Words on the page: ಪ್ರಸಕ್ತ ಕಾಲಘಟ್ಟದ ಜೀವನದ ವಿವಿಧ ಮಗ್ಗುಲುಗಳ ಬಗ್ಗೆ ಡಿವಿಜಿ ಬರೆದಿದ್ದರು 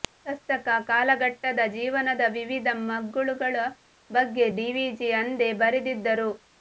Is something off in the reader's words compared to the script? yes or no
yes